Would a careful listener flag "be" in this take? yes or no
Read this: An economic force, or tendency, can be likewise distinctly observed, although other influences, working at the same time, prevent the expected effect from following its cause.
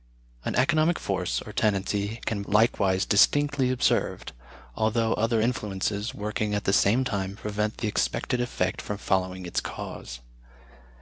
yes